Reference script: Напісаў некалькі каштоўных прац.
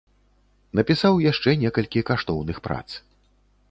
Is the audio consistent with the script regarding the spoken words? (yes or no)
no